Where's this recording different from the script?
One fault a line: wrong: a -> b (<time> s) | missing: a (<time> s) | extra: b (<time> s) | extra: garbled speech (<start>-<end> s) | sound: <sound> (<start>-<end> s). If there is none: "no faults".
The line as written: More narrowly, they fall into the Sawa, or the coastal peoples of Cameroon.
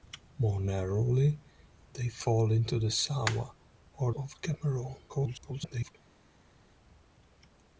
missing: the coastal peoples (4.1 s)
extra: garbled speech (5.1-5.9 s)